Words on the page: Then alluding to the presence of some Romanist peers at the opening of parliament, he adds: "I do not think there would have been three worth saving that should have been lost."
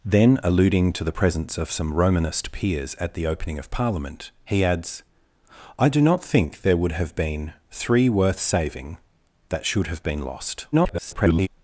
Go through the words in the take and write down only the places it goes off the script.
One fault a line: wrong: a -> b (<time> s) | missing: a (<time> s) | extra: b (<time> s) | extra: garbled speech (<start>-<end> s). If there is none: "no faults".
extra: garbled speech (10.7-11.5 s)